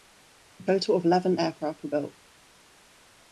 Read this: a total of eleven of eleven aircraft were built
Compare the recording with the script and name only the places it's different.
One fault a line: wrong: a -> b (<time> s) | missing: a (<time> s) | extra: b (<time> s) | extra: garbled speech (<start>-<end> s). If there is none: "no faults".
missing: of eleven (1.4 s)